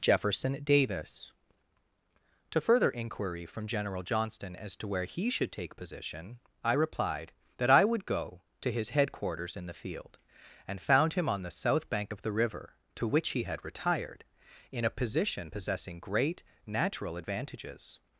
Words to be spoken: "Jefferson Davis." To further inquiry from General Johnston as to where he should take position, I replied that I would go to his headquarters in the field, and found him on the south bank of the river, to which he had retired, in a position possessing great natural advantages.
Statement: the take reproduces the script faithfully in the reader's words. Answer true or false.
true